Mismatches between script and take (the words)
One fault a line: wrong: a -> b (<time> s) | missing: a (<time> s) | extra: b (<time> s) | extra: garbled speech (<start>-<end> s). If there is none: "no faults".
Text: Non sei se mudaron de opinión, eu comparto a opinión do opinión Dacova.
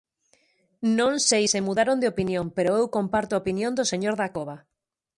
extra: pero (2.6 s)
wrong: opinión -> señor (3.9 s)